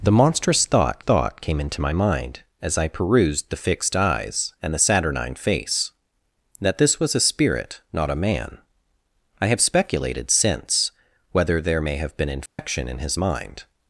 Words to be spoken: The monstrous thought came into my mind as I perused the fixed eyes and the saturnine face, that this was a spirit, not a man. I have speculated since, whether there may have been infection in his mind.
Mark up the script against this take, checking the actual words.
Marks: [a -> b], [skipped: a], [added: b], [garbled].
The monstrous thought [added: thought] came into my mind as I perused the fixed eyes and the saturnine face, that this was a spirit, not a man. I have speculated since, whether there may have been infection in his mind.